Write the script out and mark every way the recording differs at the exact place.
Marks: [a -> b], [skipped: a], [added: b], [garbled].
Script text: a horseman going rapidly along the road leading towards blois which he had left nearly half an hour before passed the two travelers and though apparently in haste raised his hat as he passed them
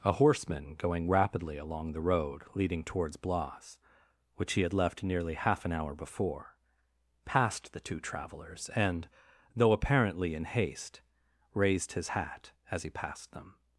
a horseman going rapidly along the road leading towards blois which he had left nearly half an hour before passed the two travelers and though apparently in haste raised his hat as he passed them